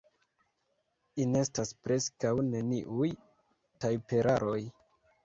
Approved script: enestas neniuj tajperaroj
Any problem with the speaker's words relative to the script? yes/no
yes